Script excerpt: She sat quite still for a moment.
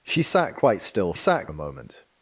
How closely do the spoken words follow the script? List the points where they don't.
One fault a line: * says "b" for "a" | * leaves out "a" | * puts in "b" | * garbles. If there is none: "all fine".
* says "sat" for "for"